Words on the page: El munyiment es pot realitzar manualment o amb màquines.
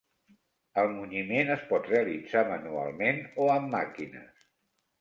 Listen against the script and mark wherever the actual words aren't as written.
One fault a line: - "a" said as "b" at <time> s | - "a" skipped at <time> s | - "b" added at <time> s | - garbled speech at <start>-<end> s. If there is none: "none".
none